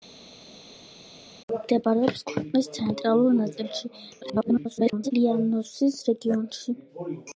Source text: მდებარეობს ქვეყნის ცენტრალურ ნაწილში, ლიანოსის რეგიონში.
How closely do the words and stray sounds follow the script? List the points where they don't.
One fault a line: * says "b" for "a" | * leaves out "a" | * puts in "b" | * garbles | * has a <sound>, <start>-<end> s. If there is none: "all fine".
* garbles